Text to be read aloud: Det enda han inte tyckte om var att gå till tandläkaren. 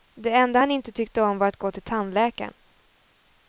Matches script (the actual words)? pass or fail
pass